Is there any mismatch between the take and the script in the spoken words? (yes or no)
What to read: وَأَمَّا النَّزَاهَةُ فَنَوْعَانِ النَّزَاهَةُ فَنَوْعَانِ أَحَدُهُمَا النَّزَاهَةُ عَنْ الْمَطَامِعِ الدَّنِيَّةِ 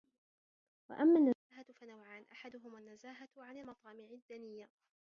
yes